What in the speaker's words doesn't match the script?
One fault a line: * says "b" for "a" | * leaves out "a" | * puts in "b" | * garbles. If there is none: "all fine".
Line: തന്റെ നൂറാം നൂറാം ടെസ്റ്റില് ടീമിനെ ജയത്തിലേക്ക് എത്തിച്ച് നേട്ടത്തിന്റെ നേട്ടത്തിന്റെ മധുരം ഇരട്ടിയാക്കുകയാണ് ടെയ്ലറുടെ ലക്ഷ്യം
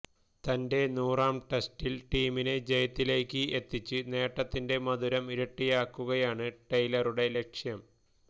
* leaves out "നൂറാം"
* leaves out "നേട്ടത്തിന്റെ"